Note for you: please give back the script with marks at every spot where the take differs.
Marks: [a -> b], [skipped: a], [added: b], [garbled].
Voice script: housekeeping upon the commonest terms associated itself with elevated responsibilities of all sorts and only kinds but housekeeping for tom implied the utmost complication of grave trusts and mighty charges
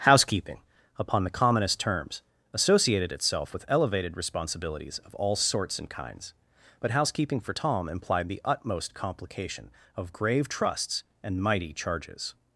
housekeeping upon the commonest terms associated itself with elevated responsibilities of all sorts and [skipped: only] kinds but housekeeping for tom implied the utmost complication of grave trusts and mighty charges